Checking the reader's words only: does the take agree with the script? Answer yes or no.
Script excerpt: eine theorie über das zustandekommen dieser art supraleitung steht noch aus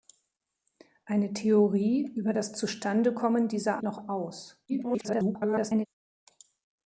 no